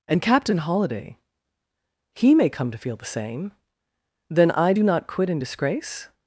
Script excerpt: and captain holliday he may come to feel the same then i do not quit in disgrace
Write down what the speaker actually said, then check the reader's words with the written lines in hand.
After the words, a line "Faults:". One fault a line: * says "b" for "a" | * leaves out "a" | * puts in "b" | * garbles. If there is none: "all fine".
and captain holliday he may come to feel the same then i do not quit in disgrace
Faults:
all fine